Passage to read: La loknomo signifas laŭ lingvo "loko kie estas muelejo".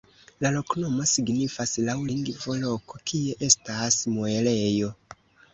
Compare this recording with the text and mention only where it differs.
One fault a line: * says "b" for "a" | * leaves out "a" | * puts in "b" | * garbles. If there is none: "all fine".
all fine